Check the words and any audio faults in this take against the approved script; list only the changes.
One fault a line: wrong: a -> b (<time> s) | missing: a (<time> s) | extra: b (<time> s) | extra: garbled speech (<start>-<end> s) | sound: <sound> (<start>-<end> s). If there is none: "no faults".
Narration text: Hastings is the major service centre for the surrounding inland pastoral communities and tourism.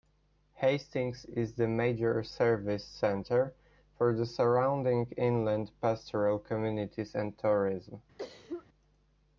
sound: cough (8.2-8.7 s)